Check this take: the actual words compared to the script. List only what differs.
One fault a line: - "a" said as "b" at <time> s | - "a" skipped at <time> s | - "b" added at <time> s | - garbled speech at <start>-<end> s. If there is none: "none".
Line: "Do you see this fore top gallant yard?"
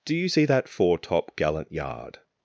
- "this" said as "that" at 0.4 s